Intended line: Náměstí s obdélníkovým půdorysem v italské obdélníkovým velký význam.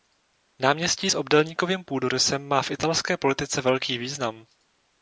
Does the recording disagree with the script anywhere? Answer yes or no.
yes